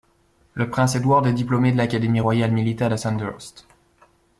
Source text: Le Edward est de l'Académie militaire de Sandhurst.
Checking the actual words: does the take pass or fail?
fail